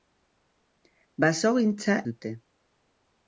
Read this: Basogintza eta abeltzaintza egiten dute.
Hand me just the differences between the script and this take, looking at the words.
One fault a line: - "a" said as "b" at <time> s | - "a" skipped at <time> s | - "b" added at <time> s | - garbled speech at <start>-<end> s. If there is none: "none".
- "eta abeltzaintza egiten" skipped at 2.0 s